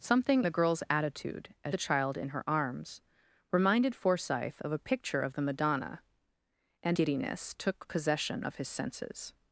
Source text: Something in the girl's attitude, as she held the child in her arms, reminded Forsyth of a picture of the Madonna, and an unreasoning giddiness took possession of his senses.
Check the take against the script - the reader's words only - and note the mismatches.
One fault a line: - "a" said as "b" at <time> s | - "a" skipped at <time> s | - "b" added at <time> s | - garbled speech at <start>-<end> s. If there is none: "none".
- "in" skipped at 0.5 s
- "she held" skipped at 1.7 s
- "an unreasoning" skipped at 7.0 s